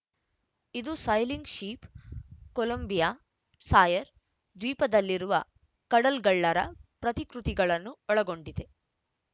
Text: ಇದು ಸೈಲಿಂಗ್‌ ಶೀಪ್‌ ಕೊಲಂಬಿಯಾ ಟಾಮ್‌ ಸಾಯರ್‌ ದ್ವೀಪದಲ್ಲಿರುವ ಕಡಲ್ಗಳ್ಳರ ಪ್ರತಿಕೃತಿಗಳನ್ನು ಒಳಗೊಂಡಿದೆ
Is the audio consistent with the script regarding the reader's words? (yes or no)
no